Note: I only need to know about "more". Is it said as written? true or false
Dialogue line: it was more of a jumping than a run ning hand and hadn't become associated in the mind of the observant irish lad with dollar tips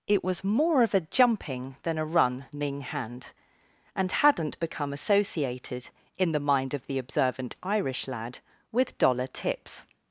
true